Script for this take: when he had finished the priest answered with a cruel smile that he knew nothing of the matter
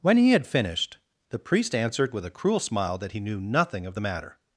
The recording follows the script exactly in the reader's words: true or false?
true